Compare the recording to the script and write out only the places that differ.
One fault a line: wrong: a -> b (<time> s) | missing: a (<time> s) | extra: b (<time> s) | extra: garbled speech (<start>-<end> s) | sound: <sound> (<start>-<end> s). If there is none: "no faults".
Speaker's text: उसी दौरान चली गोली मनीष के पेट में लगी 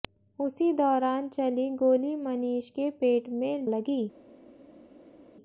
no faults